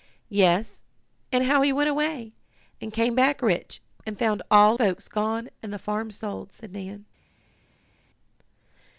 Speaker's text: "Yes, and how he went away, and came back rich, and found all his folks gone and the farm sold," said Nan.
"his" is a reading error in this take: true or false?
true